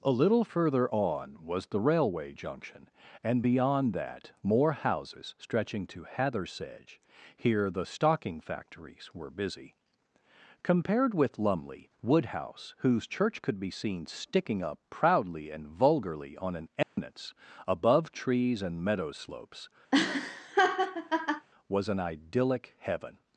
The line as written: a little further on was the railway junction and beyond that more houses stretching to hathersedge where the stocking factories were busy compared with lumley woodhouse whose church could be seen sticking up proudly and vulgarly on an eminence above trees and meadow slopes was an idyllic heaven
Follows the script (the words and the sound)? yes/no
no